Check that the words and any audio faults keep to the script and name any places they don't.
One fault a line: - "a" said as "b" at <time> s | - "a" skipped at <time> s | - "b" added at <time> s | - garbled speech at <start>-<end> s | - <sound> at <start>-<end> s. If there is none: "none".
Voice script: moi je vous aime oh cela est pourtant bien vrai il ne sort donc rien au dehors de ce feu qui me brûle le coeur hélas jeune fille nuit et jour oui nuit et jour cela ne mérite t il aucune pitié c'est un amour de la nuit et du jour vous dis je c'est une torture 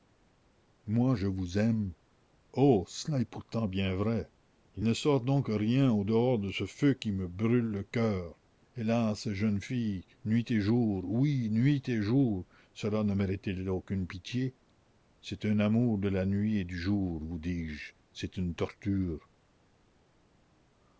none